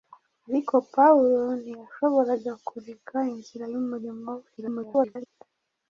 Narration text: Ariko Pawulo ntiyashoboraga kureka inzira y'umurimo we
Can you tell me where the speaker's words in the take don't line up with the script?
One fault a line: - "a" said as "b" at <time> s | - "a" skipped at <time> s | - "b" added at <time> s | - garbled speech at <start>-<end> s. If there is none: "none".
- garbled speech at 4.6-5.3 s